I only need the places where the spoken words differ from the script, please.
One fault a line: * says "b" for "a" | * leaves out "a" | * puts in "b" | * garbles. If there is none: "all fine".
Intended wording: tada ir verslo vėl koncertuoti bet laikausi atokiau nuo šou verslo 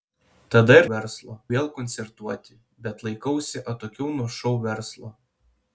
all fine